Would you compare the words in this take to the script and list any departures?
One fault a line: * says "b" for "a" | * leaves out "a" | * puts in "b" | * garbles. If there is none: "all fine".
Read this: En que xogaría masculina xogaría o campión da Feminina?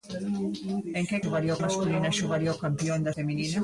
all fine